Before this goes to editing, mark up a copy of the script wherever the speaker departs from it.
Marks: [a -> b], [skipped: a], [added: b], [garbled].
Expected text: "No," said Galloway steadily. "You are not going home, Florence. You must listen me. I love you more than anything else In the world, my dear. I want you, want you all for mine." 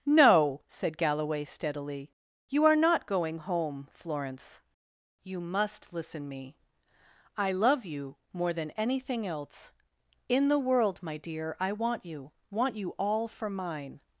"No," said Galloway steadily. "You are not going home, Florence. You must listen me. I love you more than anything else In the world, my dear. I want you, want you all for mine."